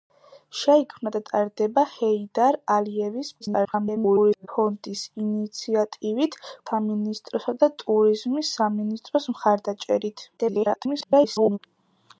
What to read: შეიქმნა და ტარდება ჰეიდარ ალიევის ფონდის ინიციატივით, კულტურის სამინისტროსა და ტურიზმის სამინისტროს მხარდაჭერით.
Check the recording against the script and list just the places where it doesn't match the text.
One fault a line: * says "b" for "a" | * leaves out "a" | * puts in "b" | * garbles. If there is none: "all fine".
* garbles
* leaves out "კულტურის"
* garbles